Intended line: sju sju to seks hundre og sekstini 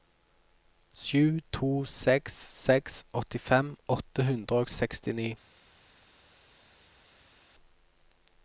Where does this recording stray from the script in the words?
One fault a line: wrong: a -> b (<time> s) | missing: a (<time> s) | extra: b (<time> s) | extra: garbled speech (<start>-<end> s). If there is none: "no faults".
missing: sju (1.4 s)
extra: seks åttifem åtte (2.6 s)